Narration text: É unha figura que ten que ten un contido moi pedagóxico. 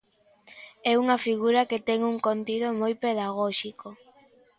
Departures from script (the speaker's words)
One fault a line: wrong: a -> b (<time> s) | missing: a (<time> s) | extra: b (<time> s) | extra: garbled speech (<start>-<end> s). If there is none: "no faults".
missing: que ten (2.0 s)